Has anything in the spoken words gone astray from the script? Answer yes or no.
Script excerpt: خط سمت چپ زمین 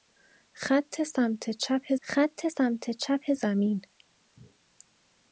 yes